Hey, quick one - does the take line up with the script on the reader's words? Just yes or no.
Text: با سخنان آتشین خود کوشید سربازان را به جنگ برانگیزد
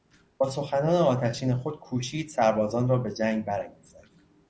yes